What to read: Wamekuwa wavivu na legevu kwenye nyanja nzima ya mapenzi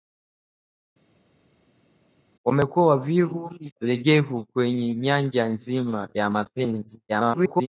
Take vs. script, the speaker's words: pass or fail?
fail